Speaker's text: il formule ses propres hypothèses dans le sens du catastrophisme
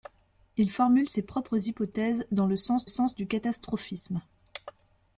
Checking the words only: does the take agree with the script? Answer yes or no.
no